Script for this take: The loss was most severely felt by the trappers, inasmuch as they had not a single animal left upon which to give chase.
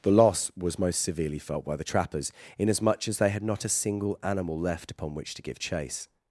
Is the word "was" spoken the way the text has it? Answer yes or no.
yes